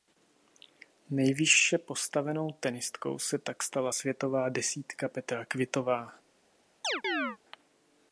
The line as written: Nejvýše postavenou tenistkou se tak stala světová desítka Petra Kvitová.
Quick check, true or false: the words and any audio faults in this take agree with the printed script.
false